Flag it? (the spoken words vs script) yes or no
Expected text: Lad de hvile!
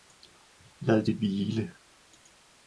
no